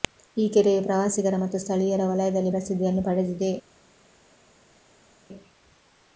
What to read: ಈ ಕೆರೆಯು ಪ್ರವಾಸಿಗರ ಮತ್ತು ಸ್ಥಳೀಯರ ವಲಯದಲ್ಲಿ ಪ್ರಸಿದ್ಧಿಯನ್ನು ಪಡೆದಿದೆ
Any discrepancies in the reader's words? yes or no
no